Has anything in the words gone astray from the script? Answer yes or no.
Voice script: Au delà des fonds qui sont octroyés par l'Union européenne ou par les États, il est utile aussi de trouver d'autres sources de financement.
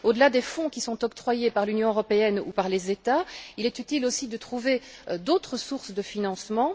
no